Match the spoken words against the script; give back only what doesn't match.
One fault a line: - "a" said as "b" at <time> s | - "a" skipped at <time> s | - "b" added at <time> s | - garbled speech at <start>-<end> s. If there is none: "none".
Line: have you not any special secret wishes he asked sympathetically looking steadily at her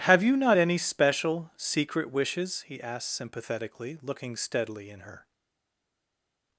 - "at" said as "in" at 4.9 s